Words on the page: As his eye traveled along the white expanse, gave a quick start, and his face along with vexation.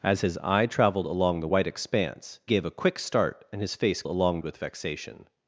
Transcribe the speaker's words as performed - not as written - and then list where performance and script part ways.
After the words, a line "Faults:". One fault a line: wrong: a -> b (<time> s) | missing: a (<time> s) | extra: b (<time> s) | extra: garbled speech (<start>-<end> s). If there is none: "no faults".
As his eye traveled along the white expanse, gave a quick start, and his face along with vexation.
Faults:
no faults